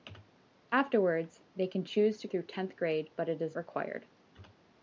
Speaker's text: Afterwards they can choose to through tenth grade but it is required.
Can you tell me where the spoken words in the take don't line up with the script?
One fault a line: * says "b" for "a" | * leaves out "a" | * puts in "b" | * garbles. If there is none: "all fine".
all fine